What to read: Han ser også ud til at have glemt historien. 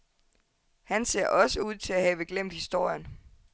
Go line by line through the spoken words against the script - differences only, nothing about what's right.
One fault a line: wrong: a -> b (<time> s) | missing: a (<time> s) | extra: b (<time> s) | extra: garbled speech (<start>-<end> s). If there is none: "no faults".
no faults